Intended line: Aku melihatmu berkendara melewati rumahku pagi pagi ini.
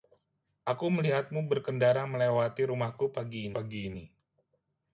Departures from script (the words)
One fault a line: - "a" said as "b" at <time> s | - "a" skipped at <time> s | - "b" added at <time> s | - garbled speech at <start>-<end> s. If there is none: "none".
none